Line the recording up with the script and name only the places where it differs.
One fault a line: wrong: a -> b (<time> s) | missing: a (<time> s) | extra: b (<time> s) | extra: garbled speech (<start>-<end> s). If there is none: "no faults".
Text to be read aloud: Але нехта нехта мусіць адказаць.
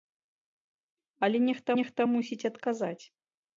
no faults